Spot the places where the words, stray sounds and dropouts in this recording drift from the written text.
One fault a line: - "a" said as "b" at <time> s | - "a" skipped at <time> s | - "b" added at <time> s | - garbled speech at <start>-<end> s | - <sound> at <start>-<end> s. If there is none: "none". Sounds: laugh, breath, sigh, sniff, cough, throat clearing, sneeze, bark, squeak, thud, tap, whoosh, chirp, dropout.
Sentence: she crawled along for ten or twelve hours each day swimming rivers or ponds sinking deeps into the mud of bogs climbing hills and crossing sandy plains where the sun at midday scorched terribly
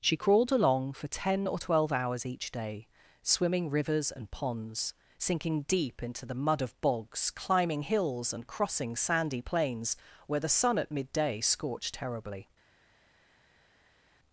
- "or" said as "and" at 4.1 s
- "deeps" said as "deep" at 5.6 s